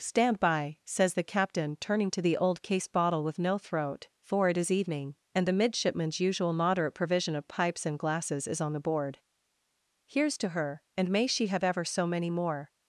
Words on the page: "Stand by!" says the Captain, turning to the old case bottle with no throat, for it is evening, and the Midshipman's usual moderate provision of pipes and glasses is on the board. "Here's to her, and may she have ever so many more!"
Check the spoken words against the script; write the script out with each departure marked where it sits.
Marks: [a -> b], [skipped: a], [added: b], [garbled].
"Stand by!" says the Captain, turning to the old case bottle with no throat, for it is evening, and the Midshipman's usual moderate provision of pipes and glasses is on the board. "Here's to her, and may she have ever so many more!"